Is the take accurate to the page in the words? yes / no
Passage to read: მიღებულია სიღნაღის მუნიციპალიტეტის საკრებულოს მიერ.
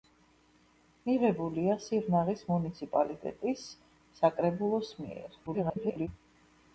no